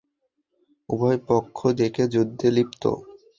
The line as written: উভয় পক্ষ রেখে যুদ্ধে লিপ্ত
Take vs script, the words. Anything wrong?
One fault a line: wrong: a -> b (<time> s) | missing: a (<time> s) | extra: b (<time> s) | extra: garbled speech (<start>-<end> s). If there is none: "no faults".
no faults